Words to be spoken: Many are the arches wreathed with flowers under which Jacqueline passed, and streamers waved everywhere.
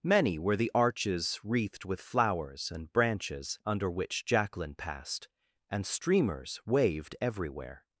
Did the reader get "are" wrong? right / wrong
wrong